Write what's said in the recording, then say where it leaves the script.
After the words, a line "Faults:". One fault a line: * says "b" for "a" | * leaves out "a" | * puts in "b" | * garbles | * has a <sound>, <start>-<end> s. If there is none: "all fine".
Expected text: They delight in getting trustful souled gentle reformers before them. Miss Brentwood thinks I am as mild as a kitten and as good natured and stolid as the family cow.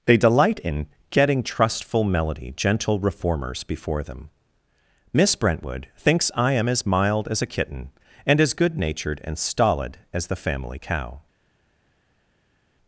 They delight in getting trustful melody gentle reformers before them. Miss Brentwood thinks I am as mild as a kitten and as good natured and stolid as the family cow.
Faults:
* says "melody" for "souled"